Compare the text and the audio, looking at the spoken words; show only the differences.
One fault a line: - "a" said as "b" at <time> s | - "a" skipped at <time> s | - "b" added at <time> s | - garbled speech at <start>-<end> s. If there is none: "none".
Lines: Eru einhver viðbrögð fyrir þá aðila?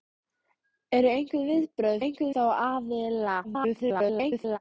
- "fyrir" said as "einhver" at 2.0 s
- garbled speech at 3.4-4.6 s